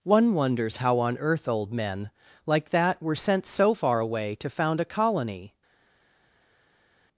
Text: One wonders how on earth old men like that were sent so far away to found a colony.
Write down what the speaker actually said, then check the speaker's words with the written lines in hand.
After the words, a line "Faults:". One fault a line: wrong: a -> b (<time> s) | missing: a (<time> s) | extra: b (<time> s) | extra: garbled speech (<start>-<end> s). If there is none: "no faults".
One wonders how on earth old men like that were sent so far away to found a colony.
Faults:
no faults